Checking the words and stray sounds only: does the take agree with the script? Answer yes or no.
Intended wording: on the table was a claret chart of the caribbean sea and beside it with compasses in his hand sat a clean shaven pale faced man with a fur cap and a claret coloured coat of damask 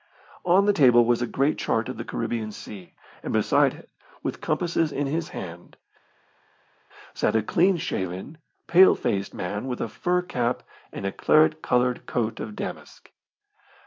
no